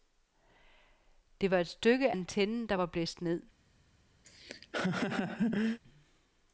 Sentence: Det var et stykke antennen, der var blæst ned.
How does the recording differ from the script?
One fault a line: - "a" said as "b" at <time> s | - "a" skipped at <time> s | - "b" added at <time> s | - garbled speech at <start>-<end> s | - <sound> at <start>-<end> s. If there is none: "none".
- laugh at 4.2-5.8 s